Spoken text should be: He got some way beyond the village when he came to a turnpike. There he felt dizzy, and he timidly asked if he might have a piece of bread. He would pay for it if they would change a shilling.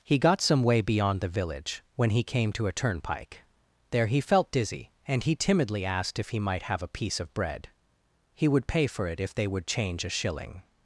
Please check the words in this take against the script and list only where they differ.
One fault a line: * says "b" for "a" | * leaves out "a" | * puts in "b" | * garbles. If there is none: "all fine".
all fine